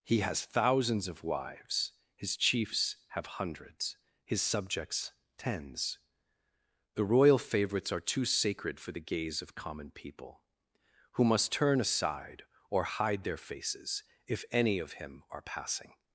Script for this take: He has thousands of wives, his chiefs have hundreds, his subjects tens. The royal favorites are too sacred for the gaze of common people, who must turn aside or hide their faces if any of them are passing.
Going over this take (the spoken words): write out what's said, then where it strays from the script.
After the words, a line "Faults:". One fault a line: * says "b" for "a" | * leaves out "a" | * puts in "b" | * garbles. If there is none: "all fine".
He has thousands of wives, his chiefs have hundreds, his subjects tens. The royal favorites are too sacred for the gaze of common people, who must turn aside or hide their faces if any of him are passing.
Faults:
* says "him" for "them"